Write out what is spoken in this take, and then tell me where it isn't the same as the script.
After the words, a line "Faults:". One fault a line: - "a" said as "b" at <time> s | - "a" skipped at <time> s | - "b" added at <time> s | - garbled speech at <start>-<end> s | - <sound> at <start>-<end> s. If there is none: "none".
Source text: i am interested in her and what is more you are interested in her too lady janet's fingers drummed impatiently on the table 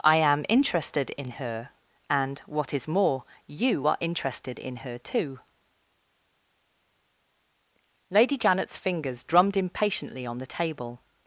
i am interested in her and what is more you are interested in her too lady janet's fingers drummed impatiently on the table
Faults:
none